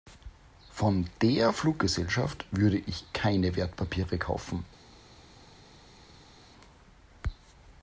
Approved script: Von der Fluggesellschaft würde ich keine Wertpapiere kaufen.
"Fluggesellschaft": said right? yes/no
yes